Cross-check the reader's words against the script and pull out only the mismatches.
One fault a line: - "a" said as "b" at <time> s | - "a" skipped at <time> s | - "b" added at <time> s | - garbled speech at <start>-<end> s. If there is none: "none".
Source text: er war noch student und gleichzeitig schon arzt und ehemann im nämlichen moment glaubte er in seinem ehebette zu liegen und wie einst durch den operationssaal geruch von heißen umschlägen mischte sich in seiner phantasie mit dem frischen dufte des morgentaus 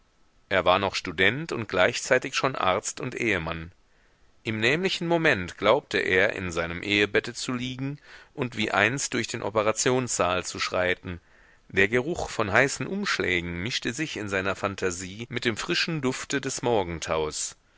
- "zu schreiten der" added at 10.4 s